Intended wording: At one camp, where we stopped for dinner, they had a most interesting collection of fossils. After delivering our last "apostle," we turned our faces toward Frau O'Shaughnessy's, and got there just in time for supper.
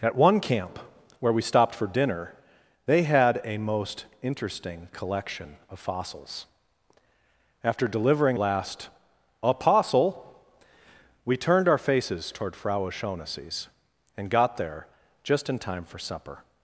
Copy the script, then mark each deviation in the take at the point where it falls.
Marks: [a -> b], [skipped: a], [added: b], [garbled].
At one camp, where we stopped for dinner, they had a most interesting collection of fossils. After delivering [skipped: our] last "apostle," we turned our faces toward Frau O'Shaughnessy's, and got there just in time for supper.